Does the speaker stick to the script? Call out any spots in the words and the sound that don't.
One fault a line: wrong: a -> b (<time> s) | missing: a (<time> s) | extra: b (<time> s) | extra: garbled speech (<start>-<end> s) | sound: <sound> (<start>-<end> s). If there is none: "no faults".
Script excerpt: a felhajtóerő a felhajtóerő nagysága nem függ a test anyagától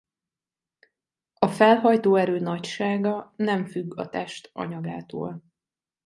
missing: a felhajtóerő (2.4 s)